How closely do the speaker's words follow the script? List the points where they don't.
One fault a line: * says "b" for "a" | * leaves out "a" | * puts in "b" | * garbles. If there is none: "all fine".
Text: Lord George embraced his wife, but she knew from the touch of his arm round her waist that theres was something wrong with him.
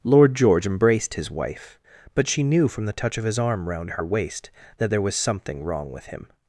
* says "there" for "theres"